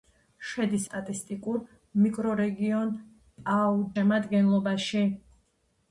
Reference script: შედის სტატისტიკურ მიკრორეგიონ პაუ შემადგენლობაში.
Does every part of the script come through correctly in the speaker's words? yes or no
yes